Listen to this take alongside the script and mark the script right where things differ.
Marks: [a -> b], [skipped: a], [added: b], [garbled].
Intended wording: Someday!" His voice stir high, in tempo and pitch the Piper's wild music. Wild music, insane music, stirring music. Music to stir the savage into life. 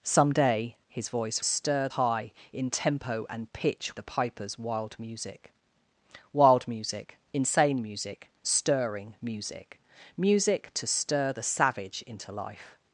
Someday!" His voice stir high, in tempo and pitch the Piper's wild music. Wild music, insane music, stirring music. Music to stir the savage into life.